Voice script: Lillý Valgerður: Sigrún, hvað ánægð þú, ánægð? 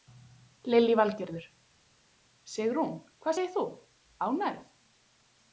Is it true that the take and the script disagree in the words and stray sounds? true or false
true